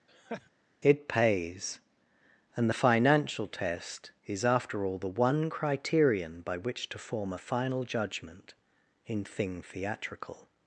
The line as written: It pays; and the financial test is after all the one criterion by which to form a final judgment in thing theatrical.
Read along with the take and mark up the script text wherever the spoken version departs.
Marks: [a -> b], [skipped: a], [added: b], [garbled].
It pays; and the financial test is after all the one criterion by which to form a final judgment in thing theatrical.